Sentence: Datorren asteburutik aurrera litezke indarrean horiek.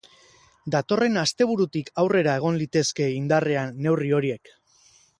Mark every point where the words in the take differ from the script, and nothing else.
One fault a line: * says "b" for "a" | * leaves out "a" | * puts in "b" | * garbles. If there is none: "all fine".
* puts in "egon"
* puts in "neurri"